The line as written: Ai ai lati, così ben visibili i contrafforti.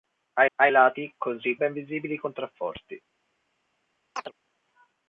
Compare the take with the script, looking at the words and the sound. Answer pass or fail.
fail